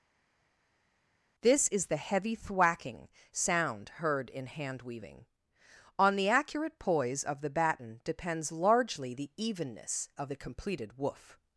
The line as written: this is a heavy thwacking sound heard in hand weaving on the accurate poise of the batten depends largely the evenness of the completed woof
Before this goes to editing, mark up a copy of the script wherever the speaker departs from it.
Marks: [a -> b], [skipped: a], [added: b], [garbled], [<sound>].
this is [a -> the] heavy thwacking sound heard in hand weaving on the accurate poise of the batten depends largely the evenness of the completed woof